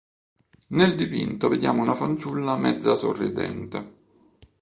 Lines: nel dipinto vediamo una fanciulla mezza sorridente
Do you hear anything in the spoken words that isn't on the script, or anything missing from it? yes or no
no